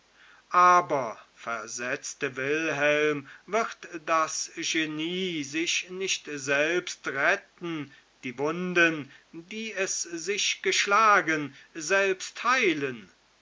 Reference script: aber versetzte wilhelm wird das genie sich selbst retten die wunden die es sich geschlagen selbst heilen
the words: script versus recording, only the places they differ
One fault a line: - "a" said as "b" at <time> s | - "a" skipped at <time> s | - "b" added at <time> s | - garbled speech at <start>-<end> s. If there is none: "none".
- "nicht" added at 5.9 s